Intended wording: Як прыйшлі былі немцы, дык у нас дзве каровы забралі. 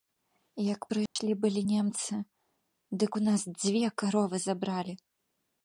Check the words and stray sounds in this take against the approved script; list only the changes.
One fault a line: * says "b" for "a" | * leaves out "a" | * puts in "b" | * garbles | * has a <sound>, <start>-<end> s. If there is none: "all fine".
* has a dropout, 1.1-1.2 s